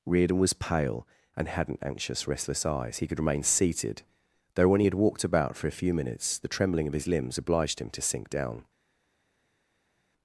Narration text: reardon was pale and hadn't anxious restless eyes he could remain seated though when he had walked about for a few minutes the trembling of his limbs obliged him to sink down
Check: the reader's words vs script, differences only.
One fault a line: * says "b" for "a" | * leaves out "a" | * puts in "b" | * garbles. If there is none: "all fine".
all fine